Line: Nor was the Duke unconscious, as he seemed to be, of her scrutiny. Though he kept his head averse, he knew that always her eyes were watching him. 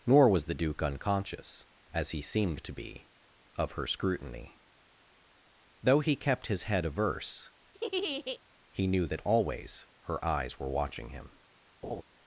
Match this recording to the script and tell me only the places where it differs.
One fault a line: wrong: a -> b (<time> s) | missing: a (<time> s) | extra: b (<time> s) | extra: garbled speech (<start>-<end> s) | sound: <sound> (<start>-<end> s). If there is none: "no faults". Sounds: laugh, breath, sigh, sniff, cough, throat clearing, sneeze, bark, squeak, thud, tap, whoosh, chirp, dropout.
sound: laugh (7.7-8.4 s)
sound: laugh (11.8-12.0 s)